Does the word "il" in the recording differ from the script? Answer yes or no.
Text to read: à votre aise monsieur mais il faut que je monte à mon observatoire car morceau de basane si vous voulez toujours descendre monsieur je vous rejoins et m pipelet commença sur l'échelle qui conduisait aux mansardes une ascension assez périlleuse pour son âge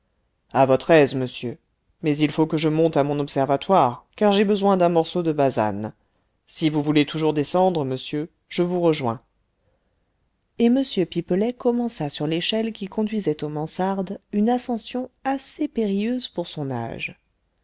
no